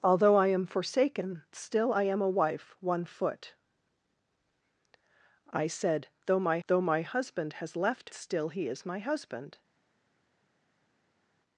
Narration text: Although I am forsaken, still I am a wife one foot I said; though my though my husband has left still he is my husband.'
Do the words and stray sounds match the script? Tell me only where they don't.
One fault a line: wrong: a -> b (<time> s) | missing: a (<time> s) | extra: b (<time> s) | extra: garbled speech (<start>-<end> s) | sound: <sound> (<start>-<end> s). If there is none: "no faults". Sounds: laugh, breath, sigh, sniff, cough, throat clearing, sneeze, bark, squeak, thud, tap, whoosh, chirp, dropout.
no faults